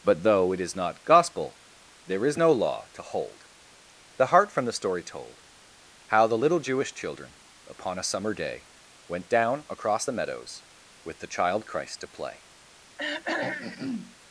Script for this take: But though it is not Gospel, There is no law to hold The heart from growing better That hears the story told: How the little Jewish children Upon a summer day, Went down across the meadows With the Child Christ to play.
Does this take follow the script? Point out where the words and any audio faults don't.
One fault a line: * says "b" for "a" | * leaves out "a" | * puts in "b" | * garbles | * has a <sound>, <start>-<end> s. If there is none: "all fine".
* leaves out "growing better That hears"
* has a throat clearing, 13.0-14.2 s